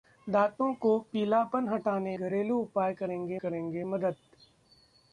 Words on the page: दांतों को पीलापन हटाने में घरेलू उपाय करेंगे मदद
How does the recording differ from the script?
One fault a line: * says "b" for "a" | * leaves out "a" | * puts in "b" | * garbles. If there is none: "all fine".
* leaves out "में"
* puts in "करेंगे"